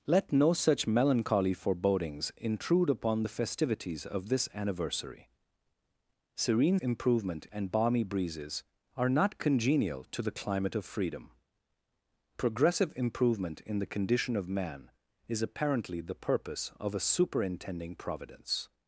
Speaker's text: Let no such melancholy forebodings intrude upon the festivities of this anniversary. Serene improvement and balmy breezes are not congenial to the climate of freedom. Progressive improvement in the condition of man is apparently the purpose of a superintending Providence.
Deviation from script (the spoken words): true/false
false